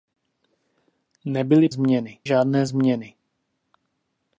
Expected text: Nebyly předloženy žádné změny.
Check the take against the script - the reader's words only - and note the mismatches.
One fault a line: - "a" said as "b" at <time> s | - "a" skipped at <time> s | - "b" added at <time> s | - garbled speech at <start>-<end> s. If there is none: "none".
- "předloženy" said as "změny" at 1.7 s